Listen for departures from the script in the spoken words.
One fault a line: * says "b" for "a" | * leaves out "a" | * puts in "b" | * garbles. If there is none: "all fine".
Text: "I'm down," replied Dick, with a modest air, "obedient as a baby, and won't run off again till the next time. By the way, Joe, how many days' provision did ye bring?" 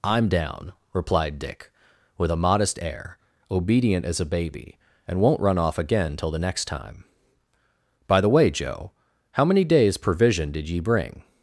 all fine